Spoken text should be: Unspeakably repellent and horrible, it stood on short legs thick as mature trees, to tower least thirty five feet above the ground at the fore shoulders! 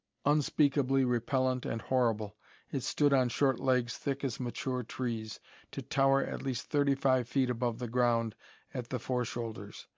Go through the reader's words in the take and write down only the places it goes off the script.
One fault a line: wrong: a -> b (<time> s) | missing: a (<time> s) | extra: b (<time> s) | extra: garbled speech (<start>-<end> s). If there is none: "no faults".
extra: at (6.2 s)